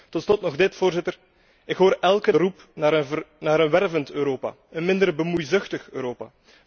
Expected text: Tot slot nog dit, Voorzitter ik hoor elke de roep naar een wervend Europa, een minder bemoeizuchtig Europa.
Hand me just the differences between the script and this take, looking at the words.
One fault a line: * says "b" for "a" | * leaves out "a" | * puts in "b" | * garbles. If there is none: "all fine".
all fine